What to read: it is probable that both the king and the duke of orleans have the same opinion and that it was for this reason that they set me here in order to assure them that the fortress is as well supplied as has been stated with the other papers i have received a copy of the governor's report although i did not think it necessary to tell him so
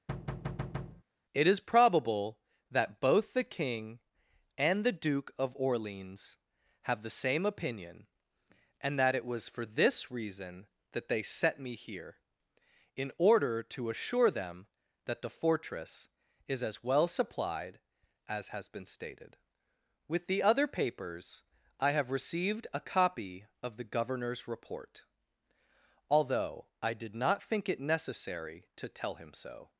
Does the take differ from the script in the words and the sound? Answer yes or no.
yes